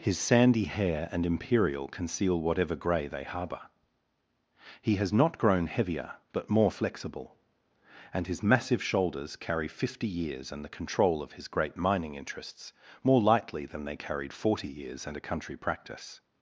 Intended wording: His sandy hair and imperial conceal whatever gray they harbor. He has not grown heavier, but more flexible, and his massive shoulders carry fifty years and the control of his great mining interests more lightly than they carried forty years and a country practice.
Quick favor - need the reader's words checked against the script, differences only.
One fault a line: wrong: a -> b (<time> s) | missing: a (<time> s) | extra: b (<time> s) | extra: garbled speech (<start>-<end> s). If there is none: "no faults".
no faults